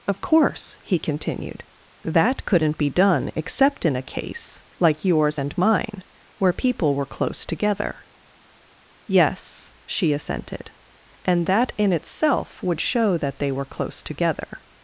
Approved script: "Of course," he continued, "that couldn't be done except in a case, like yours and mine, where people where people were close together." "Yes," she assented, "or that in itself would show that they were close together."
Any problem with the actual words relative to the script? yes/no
yes